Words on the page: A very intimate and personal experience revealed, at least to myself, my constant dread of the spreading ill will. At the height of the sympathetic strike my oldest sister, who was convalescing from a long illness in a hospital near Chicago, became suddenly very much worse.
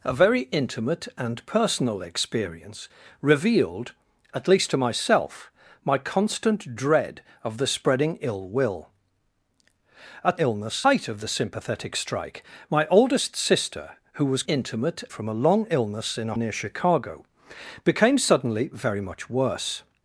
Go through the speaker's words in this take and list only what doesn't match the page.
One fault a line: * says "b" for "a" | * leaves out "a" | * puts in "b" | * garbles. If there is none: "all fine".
* says "illness" for "the"
* says "intimate" for "convalescing"
* leaves out "hospital"